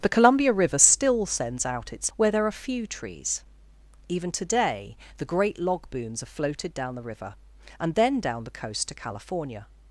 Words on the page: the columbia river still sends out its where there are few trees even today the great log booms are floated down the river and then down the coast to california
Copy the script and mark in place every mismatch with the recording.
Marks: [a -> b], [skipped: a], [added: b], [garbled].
the columbia river still sends out its where there are few trees even today the great log booms are floated down the river and then down the coast to california